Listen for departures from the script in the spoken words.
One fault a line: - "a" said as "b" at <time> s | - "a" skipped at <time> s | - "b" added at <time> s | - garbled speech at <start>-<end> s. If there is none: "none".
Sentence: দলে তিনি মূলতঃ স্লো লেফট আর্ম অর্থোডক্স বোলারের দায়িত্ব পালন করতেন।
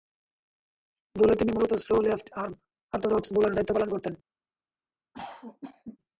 none